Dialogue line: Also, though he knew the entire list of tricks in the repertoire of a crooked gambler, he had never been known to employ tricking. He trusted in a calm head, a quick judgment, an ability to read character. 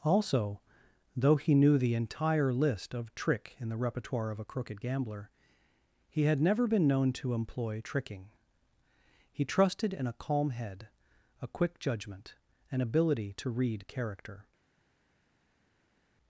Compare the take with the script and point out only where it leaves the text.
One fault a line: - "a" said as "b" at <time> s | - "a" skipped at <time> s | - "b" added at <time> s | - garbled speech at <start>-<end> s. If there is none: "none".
- "tricks" said as "trick" at 3.1 s